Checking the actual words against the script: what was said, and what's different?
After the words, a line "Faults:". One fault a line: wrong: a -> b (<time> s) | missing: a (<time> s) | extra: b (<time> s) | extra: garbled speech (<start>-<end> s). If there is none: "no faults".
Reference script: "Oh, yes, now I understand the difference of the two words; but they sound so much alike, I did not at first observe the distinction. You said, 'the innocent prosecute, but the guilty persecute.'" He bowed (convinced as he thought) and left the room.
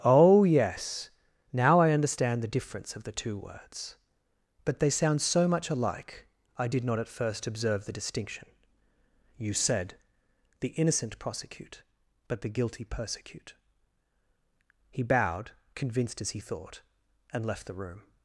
"Oh, yes, now I understand the difference of the two words; but they sound so much alike, I did not at first observe the distinction. You said, 'the innocent prosecute, but the guilty persecute.'" He bowed (convinced as he thought) and left the room.
Faults:
no faults